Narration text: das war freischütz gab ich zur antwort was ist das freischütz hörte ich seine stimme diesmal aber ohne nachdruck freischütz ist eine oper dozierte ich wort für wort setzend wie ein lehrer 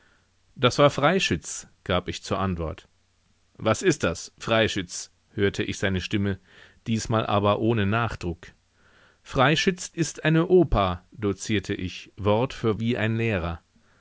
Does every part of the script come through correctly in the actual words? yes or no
no